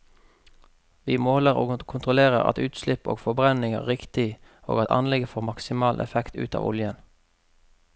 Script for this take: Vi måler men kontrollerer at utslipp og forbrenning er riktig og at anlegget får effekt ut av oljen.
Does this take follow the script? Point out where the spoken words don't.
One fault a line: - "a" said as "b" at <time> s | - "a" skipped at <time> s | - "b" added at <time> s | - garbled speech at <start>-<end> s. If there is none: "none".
- "men" said as "og" at 1.6 s
- "maksimal" added at 5.5 s